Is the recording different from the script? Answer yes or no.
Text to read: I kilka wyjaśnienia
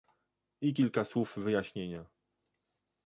yes